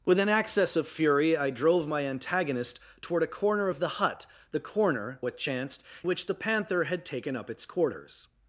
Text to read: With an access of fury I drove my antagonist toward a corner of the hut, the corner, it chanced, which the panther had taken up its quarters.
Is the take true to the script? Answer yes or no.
yes